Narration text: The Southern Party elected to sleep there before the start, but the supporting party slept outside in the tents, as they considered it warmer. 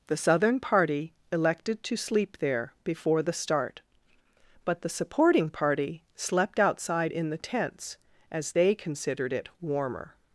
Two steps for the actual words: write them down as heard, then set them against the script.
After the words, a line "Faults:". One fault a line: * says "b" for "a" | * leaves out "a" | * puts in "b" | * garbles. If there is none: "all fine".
The Southern Party elected to sleep there before the start, but the supporting party slept outside in the tents, as they considered it warmer.
Faults:
all fine